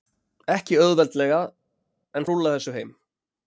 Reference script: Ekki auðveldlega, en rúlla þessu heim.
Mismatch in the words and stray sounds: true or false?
false